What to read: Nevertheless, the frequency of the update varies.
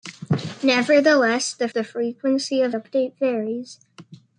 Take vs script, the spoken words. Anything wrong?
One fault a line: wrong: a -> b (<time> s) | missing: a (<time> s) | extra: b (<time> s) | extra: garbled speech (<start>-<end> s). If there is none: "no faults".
extra: the (1.7 s)
missing: the (2.8 s)